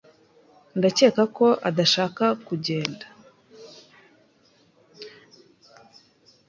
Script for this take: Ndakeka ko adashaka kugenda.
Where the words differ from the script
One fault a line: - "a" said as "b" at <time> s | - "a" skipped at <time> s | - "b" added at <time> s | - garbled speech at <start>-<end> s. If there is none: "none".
none